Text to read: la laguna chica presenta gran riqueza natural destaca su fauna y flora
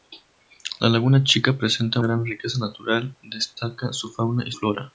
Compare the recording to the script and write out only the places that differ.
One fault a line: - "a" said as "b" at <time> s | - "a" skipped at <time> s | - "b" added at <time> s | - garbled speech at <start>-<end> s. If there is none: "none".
none